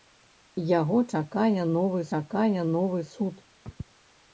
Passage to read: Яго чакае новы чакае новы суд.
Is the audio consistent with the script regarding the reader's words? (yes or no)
yes